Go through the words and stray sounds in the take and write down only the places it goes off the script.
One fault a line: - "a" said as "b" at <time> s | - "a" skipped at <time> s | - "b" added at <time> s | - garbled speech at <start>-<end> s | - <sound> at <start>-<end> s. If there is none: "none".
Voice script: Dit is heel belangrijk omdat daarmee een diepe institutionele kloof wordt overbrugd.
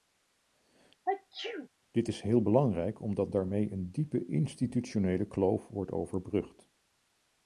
- sneeze at 1.1-1.7 s